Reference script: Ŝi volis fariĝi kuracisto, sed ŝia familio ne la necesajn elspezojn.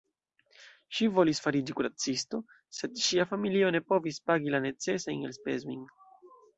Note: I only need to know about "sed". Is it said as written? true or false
true